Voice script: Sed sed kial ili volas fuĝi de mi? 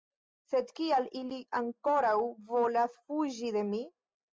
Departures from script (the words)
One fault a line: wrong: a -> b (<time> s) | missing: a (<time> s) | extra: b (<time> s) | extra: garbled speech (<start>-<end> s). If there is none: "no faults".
missing: sed (0.7 s)
extra: ankoraŭ (1.6 s)